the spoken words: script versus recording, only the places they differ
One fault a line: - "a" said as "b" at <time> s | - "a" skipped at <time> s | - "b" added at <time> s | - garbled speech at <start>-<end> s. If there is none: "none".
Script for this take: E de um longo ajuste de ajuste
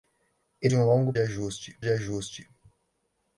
none